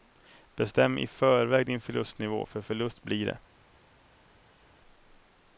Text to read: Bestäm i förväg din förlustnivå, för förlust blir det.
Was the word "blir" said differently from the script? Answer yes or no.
no